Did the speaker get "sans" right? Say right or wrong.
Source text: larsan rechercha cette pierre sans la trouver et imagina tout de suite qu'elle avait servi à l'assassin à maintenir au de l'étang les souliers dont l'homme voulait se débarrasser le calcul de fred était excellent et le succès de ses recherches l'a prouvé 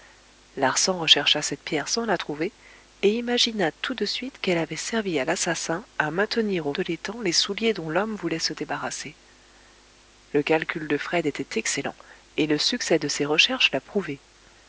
right